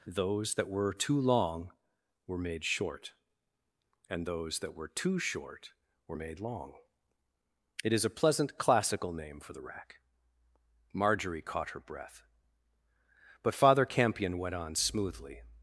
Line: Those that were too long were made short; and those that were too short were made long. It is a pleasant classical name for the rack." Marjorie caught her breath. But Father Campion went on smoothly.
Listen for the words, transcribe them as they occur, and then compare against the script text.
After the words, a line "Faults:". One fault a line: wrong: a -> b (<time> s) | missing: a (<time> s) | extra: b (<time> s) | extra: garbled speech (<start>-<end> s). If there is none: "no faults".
Those that were too long were made short; and those that were too short were made long. It is a pleasant classical name for the rack." Marjorie caught her breath. But Father Campion went on smoothly.
Faults:
no faults